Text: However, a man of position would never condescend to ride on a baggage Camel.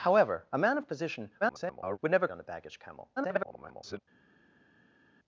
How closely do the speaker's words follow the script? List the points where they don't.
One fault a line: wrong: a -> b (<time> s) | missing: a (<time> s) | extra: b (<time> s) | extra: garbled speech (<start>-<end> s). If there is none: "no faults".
extra: garbled speech (1.4-2.0 s)
missing: condescend to ride (2.3 s)
extra: garbled speech (3.2-4.0 s)